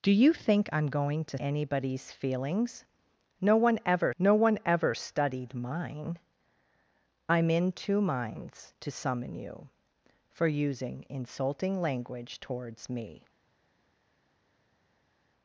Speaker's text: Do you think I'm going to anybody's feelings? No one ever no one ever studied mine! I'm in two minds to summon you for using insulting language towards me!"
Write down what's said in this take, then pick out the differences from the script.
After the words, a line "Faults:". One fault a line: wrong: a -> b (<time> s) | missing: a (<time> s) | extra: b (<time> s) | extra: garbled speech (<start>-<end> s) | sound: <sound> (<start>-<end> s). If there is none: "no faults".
Do you think I'm going to anybody's feelings? No one ever no one ever studied mine! I'm in two minds to summon you for using insulting language towards me!"
Faults:
no faults